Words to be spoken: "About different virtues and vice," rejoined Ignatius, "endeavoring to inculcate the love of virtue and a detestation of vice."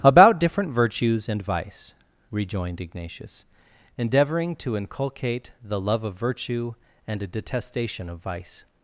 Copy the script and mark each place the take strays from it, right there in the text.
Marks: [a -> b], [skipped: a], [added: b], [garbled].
"About different virtues and vice," rejoined Ignatius, "endeavoring to inculcate the love of virtue and a detestation of vice."